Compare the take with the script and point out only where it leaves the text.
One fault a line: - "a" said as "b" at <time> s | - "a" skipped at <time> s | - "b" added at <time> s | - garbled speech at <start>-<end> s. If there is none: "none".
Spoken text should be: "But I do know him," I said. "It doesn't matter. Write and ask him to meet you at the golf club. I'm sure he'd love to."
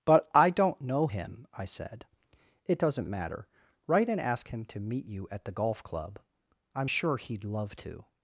- "do" said as "don't" at 0.5 s